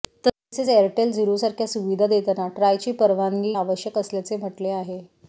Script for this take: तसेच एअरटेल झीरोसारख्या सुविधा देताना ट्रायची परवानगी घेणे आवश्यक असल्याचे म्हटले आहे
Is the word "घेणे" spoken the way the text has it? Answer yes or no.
no